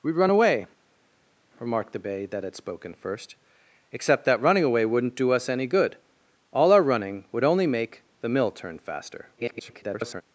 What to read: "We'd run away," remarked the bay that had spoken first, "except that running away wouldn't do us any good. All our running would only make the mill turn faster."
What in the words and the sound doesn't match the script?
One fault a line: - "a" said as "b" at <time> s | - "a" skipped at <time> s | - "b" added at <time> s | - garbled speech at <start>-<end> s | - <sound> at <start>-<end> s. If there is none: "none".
- garbled speech at 9.4-10.2 s